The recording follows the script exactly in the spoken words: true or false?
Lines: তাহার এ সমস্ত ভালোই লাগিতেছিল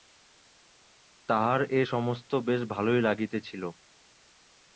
false